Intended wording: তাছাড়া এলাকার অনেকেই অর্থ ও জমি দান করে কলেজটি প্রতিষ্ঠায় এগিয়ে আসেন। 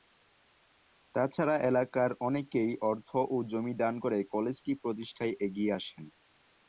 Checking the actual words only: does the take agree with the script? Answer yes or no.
yes